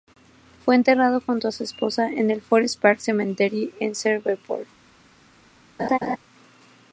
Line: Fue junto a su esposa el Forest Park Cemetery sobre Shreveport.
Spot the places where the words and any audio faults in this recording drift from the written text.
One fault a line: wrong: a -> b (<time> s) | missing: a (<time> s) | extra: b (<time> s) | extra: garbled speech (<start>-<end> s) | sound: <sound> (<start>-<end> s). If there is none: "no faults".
extra: enterrado (0.7 s)
extra: en (2.1 s)
wrong: sobre -> en (3.8 s)
sound: laugh (5.8-6.2 s)